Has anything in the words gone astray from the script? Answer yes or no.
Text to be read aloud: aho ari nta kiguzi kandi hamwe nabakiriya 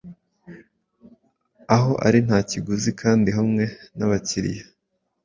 no